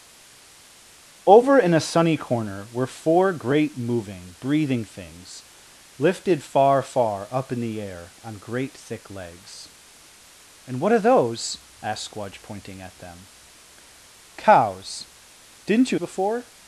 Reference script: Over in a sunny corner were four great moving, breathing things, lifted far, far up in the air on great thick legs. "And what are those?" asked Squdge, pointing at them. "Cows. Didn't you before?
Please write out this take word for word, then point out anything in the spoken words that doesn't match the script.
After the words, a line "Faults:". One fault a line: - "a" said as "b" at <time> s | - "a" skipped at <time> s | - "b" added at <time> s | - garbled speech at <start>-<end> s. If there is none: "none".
Over in a sunny corner were four great moving, breathing things, lifted far, far up in the air on great thick legs. "And what are those?" asked Squdge, pointing at them. "Cows. Didn't you before?
Faults:
none